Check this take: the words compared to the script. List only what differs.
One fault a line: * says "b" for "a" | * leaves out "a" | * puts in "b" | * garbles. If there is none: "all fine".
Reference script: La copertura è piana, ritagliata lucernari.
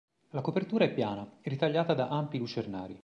* puts in "da ampi"